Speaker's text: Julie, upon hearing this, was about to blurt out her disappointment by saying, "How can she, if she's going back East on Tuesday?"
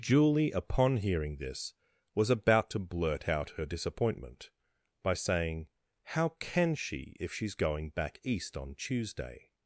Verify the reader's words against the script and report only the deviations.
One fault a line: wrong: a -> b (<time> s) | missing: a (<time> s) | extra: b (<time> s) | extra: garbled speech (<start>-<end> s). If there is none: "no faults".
no faults